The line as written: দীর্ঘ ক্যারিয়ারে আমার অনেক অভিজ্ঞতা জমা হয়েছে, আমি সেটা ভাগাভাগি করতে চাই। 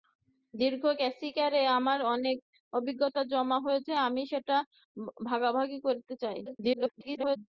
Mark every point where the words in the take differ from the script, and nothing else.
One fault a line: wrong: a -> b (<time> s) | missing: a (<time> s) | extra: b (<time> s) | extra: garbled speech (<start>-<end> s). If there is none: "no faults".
extra: garbled speech (6.5-7.4 s)